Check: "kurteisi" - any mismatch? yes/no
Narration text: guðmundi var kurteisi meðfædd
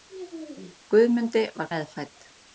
yes